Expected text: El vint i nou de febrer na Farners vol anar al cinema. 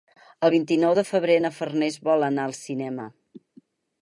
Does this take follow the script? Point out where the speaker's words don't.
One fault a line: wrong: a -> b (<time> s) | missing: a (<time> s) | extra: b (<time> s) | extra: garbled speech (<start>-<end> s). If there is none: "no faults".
no faults